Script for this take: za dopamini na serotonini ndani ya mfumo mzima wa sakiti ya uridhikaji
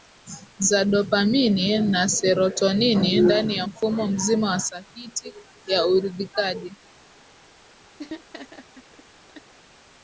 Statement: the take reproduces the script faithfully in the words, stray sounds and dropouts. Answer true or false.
false